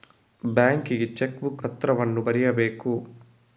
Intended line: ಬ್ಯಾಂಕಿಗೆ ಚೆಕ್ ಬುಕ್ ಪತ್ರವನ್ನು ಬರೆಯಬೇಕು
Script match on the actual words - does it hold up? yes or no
yes